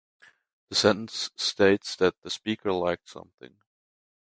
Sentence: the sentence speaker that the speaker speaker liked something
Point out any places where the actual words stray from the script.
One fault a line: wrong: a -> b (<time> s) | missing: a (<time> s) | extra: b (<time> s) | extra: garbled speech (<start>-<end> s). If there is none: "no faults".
wrong: speaker -> states (1.4 s)
missing: speaker (2.7 s)